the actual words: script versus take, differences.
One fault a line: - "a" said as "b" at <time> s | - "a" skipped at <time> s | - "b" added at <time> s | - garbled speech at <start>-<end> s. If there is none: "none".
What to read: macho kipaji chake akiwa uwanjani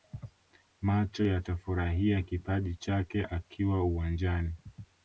- "yatafurahia" added at 1.2 s